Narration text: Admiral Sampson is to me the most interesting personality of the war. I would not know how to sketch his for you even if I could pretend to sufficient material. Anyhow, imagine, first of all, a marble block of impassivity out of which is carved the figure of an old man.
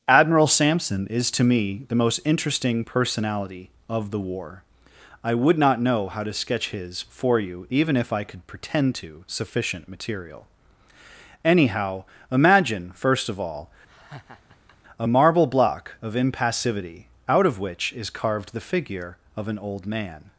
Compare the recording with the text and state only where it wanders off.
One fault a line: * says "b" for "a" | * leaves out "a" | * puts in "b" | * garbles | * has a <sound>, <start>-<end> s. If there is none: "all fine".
* has a laugh, 13.9-14.8 s